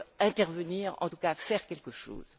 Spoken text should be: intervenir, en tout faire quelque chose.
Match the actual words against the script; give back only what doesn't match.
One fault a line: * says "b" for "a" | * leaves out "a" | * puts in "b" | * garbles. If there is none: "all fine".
* puts in "cas"